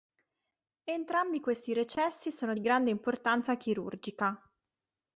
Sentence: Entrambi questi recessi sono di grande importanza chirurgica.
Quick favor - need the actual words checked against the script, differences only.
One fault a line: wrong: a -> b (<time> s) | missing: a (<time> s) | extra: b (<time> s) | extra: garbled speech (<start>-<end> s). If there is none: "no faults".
no faults